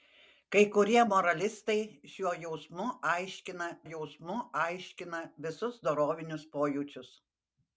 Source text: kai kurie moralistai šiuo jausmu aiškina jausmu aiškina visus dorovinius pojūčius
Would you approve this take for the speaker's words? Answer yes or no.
yes